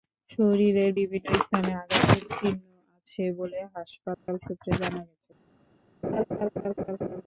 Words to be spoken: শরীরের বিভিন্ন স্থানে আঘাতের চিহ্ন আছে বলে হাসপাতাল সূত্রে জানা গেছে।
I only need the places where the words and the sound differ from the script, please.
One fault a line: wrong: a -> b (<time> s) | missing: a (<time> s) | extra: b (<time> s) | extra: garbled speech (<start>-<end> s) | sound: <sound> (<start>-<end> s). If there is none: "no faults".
sound: dropout (4.1-4.3 s)
sound: laugh (6.0-7.2 s)